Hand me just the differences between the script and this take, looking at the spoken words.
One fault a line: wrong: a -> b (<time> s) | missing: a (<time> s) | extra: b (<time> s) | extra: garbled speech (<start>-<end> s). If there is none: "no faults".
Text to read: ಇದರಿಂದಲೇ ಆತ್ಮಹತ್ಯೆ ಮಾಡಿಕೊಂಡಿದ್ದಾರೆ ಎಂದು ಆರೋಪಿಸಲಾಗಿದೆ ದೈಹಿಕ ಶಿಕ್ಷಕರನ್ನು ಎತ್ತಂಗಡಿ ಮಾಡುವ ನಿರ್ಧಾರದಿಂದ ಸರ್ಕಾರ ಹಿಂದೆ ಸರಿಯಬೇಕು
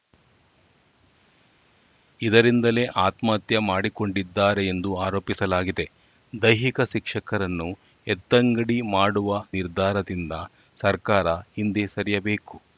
no faults